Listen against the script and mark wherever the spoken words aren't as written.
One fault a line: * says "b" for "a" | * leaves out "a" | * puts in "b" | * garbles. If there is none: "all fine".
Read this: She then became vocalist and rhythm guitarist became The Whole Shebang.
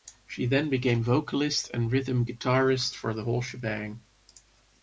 * says "for" for "became"